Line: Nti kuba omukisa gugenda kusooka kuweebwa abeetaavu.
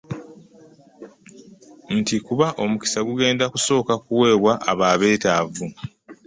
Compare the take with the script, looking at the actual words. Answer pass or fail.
fail